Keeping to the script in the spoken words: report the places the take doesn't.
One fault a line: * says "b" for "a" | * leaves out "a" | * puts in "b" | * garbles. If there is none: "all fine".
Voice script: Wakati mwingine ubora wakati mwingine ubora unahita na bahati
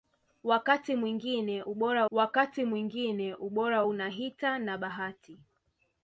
all fine